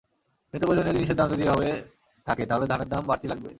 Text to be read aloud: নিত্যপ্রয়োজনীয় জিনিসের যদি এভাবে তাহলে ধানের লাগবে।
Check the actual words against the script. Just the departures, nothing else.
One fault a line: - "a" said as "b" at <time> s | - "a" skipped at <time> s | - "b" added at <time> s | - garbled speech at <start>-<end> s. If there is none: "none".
- "দাম" added at 1.2 s
- "থাকে" added at 2.3 s
- "দাম বাড়তি" added at 2.9 s